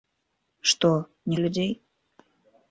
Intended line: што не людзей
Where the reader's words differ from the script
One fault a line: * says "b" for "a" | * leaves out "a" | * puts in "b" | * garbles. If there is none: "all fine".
all fine